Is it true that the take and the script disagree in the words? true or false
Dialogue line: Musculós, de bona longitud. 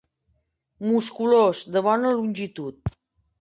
false